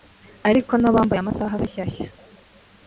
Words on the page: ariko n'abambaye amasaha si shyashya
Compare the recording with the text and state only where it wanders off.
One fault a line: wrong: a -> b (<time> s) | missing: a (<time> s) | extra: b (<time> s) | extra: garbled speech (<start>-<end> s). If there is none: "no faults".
no faults